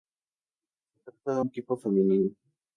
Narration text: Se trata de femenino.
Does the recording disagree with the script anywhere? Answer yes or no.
yes